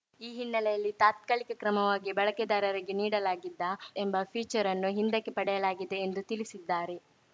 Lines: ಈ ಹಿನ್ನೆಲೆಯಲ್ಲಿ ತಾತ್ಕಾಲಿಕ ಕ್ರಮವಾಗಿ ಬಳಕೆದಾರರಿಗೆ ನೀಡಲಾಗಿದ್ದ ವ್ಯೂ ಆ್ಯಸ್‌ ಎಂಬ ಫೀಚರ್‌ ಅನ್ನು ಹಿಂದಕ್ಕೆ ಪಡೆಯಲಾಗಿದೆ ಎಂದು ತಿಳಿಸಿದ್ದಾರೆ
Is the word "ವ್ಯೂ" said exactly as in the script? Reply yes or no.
no